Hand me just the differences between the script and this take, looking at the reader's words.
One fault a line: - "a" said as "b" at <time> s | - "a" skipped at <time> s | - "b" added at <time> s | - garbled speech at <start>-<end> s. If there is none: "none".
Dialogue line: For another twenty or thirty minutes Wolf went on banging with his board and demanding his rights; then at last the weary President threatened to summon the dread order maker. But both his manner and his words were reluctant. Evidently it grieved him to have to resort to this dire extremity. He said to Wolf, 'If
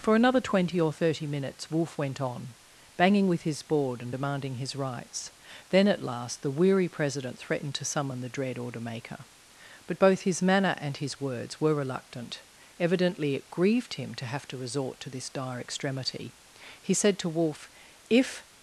none